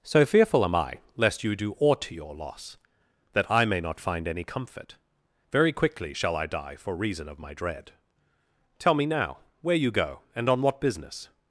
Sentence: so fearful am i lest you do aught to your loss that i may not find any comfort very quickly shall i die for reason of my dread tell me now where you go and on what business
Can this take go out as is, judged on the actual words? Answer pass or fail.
pass